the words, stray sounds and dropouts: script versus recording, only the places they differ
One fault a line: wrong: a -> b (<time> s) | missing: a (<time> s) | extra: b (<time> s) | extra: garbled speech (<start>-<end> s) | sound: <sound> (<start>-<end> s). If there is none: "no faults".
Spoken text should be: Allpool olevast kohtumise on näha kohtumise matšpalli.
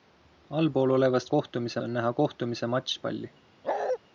sound: bark (3.6-4.0 s)